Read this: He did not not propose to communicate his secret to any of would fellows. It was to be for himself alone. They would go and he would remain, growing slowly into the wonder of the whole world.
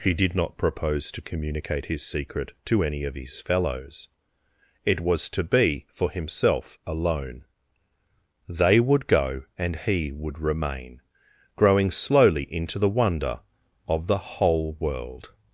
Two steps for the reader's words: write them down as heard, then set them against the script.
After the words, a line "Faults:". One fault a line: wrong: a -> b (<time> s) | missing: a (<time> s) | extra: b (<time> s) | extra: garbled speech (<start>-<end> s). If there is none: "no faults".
He did not propose to communicate his secret to any of his fellows. It was to be for himself alone. They would go and he would remain, growing slowly into the wonder of the whole world.
Faults:
missing: not (0.6 s)
wrong: would -> his (3.2 s)